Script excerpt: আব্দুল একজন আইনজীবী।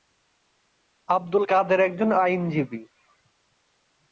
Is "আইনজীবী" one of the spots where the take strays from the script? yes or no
no